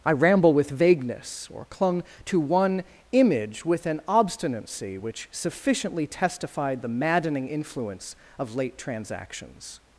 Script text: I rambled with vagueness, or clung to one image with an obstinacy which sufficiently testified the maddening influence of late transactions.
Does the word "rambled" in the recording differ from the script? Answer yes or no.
yes